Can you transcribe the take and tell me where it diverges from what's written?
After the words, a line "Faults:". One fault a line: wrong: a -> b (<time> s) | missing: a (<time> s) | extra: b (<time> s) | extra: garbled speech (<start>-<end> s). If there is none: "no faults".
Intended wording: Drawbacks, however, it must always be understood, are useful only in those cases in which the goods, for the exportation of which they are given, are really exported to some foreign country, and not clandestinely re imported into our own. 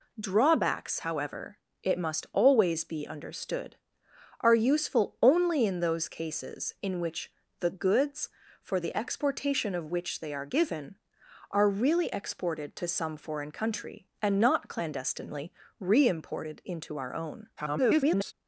Drawbacks, however, it must always be understood, are useful only in those cases in which the goods, for the exportation of which they are given, are really exported to some foreign country, and not clandestinely re imported into our own. [garbled]
Faults:
extra: garbled speech (17.6-18.3 s)